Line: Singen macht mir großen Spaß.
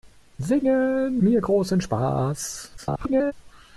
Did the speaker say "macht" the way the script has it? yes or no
no